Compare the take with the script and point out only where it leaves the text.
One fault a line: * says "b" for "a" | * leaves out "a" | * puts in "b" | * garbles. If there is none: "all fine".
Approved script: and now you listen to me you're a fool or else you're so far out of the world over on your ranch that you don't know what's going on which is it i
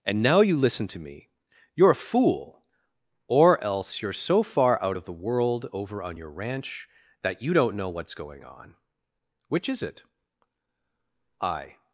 all fine